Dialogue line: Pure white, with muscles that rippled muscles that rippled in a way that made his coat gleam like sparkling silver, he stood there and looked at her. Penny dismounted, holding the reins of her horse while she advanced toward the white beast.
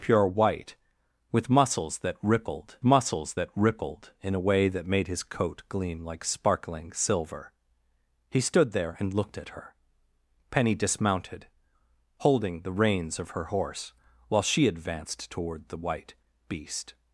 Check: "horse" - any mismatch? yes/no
no